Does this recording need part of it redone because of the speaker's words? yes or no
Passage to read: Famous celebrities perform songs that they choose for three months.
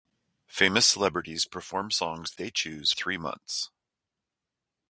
yes